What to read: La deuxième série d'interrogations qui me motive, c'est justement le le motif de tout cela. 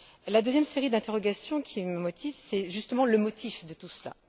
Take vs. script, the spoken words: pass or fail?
fail